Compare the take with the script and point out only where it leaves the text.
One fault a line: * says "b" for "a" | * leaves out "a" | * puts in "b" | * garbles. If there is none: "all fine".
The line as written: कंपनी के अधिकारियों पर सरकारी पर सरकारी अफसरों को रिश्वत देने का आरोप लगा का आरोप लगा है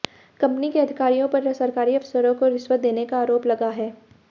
* leaves out "पर सरकारी"
* leaves out "का आरोप लगा"